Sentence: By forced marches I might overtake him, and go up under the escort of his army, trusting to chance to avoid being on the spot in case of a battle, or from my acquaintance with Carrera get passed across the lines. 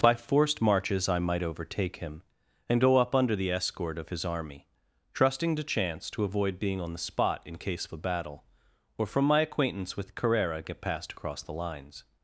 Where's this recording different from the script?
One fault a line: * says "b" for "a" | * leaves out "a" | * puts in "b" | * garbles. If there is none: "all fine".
all fine